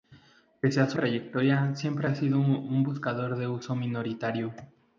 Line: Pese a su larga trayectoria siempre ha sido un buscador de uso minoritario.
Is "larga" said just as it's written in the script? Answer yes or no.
no